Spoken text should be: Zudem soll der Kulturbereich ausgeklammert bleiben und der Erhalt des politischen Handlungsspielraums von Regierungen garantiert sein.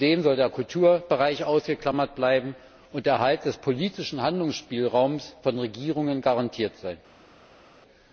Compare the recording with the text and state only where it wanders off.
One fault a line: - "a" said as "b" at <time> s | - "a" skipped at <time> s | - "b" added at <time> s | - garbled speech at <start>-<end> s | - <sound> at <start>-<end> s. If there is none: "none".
none